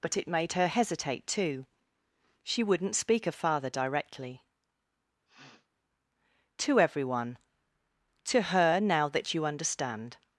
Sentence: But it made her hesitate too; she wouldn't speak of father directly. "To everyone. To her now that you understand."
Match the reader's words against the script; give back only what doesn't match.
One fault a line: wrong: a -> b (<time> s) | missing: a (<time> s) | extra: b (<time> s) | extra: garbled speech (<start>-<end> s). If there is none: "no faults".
no faults